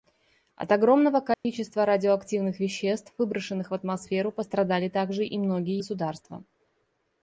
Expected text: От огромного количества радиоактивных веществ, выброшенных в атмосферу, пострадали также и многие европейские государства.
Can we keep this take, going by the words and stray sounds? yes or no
no